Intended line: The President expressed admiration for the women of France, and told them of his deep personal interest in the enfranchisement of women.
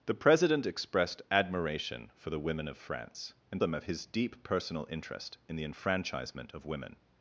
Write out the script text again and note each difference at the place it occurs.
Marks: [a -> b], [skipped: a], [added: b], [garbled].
The President expressed admiration for the women of France, and [skipped: told] them of his deep personal interest in the enfranchisement of women.